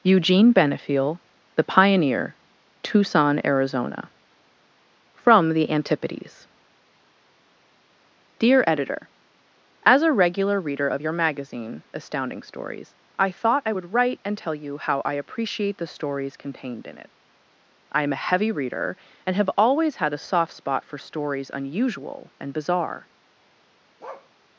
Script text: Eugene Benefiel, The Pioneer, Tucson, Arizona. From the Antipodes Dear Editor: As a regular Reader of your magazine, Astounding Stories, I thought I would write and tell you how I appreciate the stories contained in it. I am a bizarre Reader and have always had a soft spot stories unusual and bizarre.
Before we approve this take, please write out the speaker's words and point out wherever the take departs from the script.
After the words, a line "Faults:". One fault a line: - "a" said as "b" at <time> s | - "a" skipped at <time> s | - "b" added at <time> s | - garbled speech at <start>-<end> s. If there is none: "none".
Eugene Benefiel, The Pioneer, Tucson, Arizona. From the Antipodes Dear Editor: As a regular Reader of your magazine, Astounding Stories, I thought I would write and tell you how I appreciate the stories contained in it. I am a heavy Reader and have always had a soft spot for stories unusual and bizarre.
Faults:
- "bizarre" said as "heavy" at 18.3 s
- "for" added at 20.8 s